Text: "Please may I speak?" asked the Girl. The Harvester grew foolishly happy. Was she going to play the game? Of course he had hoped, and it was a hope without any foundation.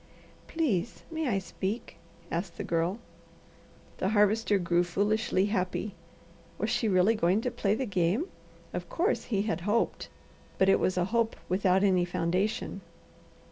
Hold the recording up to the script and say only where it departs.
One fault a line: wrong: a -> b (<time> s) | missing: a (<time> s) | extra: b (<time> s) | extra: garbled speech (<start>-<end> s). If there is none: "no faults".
extra: really (6.9 s)
wrong: and -> but (10.6 s)